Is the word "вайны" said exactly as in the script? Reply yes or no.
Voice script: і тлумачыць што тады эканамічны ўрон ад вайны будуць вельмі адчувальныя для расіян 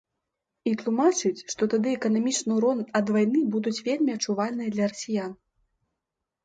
yes